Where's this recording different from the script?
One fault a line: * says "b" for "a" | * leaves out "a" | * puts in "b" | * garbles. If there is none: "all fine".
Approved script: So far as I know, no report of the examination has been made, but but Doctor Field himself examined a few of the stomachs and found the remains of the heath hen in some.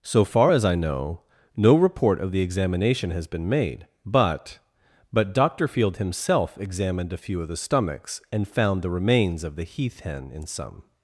all fine